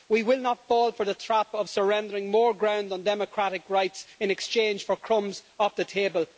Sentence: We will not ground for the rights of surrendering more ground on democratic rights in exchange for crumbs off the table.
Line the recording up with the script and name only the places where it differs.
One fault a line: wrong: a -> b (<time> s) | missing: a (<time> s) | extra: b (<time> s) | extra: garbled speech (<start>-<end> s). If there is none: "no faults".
wrong: ground -> fall (0.7 s)
wrong: rights -> trap (1.1 s)